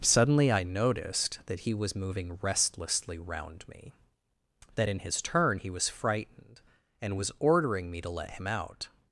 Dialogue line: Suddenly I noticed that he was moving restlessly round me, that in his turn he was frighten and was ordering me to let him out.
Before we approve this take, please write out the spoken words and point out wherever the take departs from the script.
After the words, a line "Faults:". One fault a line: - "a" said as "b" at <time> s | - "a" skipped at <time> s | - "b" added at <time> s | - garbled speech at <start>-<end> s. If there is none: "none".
Suddenly I noticed that he was moving restlessly round me, that in his turn he was frightened and was ordering me to let him out.
Faults:
- "frighten" said as "frightened" at 5.9 s